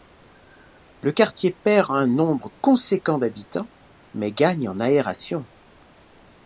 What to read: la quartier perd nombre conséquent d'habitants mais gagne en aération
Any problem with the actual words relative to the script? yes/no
yes